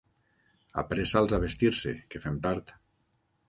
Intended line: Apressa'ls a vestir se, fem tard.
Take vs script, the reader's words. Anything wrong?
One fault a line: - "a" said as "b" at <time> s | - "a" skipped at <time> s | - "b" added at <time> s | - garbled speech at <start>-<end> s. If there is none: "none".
- "que" added at 2.1 s